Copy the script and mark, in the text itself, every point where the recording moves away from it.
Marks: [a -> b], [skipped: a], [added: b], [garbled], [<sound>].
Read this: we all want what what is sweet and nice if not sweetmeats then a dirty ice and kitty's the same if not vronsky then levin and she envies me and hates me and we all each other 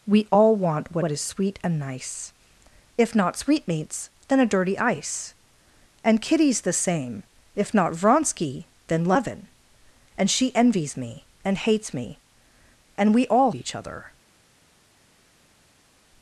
we all want what what is sweet and nice if not sweetmeats then a dirty ice and kitty's the same if not vronsky then levin and she envies me and hates me and we all each other